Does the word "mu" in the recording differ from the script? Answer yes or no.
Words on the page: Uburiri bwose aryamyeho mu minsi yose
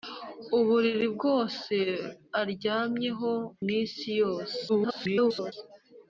yes